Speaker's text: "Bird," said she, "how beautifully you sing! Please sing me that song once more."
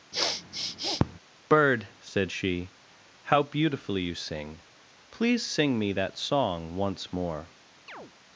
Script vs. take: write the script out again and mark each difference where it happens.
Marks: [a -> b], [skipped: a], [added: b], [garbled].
"Bird," said she, "how beautifully you sing! Please sing me that song once more."